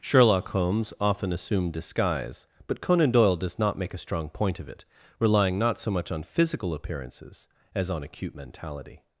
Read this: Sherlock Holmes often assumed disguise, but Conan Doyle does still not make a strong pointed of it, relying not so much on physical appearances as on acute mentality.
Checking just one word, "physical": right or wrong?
right